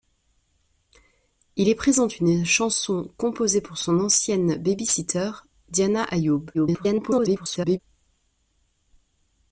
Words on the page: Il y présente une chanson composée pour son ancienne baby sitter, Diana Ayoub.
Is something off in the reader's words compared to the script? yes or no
yes